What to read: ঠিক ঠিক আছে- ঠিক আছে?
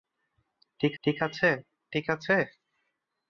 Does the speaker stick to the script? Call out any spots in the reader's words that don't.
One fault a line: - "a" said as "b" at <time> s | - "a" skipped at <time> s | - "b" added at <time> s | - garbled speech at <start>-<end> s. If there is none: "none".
none